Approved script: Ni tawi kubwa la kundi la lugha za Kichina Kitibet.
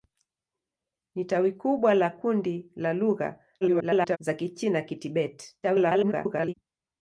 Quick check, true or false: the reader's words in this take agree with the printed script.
false